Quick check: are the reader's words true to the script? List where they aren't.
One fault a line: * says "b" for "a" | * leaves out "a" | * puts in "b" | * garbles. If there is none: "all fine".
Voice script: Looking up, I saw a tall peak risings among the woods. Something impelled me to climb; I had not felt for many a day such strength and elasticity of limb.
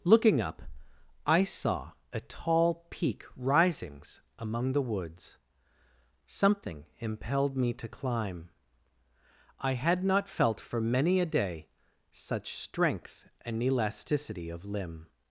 all fine